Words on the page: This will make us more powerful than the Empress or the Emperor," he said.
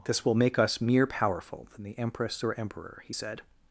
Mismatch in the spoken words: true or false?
true